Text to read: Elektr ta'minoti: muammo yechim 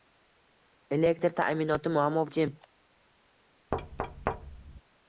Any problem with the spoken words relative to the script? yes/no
no